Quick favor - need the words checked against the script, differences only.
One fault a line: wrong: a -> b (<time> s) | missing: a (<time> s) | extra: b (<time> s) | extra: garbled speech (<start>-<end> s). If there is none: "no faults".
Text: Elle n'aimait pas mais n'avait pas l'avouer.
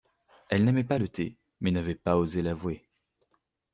extra: le thé (1.0 s)
extra: osé (2.2 s)